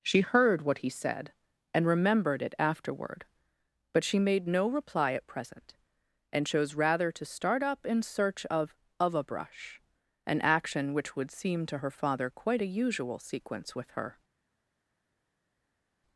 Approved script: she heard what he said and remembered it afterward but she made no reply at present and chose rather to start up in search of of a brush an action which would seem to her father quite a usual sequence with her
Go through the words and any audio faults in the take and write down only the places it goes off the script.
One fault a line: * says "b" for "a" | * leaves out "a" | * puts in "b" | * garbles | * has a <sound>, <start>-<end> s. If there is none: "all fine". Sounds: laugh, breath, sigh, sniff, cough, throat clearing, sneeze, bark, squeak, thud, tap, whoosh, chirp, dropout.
all fine